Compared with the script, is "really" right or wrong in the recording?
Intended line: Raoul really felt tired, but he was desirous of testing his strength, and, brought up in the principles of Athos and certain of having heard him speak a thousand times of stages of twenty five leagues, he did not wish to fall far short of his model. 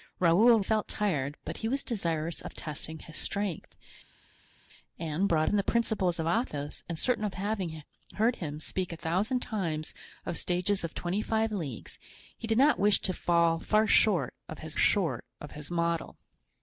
wrong